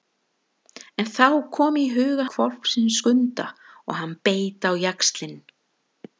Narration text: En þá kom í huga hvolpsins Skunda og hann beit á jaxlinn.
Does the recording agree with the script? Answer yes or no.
yes